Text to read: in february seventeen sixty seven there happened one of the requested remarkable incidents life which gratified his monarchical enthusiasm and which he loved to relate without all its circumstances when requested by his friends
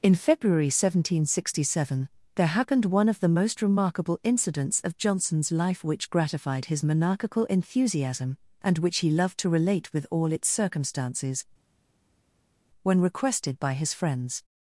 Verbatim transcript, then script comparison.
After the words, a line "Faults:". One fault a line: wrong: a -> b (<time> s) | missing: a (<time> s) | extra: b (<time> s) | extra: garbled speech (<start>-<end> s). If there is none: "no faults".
in february seventeen sixty seven there happened one of the most remarkable incidents of johnson's life which gratified his monarchical enthusiasm and which he loved to relate with all its circumstances when requested by his friends
Faults:
wrong: requested -> most (3.3 s)
extra: of johnson's (4.8 s)
wrong: without -> with (9.9 s)